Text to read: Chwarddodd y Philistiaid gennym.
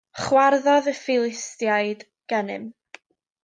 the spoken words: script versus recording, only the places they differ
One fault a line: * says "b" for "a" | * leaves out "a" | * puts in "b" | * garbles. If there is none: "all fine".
all fine